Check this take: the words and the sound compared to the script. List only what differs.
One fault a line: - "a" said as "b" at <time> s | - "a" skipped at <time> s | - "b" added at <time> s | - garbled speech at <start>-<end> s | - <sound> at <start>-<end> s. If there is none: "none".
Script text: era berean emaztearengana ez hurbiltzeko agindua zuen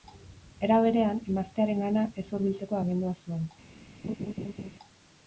- laugh at 4.0-4.7 s